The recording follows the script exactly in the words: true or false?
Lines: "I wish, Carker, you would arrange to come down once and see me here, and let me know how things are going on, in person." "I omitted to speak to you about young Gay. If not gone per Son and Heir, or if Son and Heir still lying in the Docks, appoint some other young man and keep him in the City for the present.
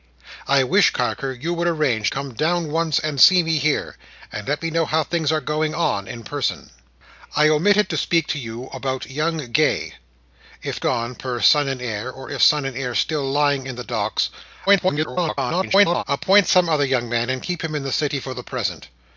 false